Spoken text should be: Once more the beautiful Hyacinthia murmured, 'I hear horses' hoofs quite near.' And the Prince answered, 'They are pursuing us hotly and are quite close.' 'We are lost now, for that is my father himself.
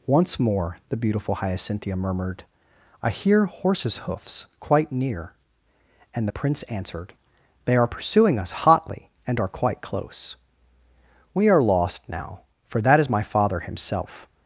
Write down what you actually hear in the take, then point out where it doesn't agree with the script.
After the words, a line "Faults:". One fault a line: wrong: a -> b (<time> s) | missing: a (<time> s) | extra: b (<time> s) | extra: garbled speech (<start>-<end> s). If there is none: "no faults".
Once more the beautiful Hyacinthia murmured, 'I hear horses' hoofs quite near.' And the Prince answered, 'They are pursuing us hotly and are quite close.' 'We are lost now, for that is my father himself.
Faults:
no faults